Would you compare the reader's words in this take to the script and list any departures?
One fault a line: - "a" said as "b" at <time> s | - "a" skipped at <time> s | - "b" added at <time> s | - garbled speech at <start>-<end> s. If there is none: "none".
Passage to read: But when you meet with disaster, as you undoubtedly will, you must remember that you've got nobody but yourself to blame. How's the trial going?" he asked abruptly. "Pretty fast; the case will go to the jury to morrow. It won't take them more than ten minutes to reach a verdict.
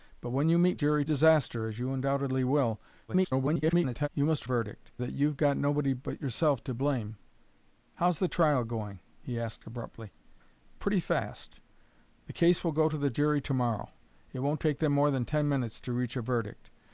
- "with" said as "jury" at 0.7 s
- garbled speech at 3.1-4.1 s
- "remember" said as "verdict" at 4.4 s